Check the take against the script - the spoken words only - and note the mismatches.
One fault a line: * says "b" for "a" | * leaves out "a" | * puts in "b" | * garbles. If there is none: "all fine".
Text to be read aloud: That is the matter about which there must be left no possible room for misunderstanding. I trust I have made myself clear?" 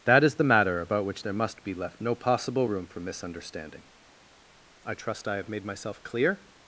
all fine